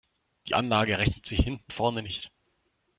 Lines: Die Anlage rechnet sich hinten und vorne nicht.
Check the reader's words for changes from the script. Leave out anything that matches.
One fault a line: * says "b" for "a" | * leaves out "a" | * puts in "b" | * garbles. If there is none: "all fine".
* leaves out "und"